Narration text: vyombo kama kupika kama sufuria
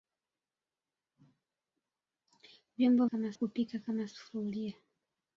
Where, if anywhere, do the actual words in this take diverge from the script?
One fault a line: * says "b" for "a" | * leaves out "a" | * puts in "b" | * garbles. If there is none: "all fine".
all fine